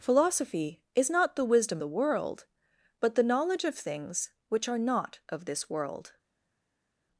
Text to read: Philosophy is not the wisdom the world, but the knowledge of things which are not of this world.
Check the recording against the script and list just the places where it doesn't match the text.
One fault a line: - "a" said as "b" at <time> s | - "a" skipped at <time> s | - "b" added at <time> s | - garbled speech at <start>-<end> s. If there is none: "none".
none